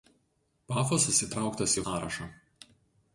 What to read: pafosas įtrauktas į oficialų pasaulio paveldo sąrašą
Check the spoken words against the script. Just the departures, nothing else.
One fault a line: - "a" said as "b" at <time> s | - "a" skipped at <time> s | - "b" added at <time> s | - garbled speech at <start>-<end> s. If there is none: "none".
- "oficialų pasaulio paveldo" skipped at 1.8 s